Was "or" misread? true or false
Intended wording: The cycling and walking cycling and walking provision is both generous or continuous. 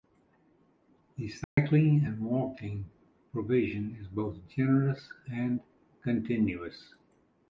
true